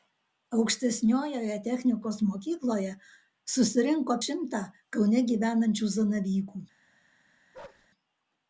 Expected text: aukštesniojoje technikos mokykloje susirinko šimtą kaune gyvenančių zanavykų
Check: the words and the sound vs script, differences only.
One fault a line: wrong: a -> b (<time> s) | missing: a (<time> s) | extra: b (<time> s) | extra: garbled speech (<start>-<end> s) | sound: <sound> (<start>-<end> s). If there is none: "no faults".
sound: bark (7.5-7.9 s)